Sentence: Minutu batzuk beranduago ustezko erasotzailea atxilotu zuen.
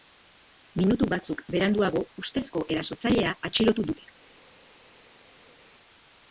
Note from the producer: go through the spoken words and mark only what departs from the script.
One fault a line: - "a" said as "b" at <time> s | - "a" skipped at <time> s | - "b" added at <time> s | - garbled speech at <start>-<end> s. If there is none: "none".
- "zuen" said as "dute" at 3.9 s